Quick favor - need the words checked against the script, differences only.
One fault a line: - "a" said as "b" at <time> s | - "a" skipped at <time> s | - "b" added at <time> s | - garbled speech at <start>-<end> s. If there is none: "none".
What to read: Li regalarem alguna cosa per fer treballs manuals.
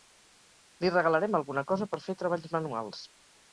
none